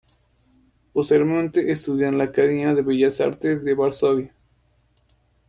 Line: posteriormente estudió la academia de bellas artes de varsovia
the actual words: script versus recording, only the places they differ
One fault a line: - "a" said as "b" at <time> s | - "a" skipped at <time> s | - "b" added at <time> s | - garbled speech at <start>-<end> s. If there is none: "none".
- "en" added at 2.1 s